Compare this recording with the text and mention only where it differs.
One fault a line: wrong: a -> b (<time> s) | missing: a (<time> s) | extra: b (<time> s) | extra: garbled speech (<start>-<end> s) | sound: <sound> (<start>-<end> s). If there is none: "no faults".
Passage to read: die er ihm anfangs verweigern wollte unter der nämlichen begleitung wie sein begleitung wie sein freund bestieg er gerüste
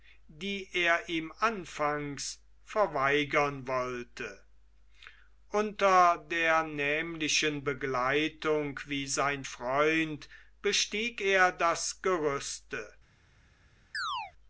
missing: begleitung wie sein (9.4 s)
extra: das (11.5 s)
sound: chirp (13.9-14.3 s)